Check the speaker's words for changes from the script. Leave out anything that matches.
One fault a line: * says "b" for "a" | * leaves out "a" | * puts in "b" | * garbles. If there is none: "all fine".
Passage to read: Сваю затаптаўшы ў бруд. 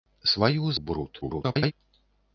* leaves out "затаптаўшы"
* garbles